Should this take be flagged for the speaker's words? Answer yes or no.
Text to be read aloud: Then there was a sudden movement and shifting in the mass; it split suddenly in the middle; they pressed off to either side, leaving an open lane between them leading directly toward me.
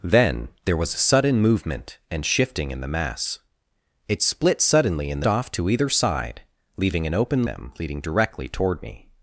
yes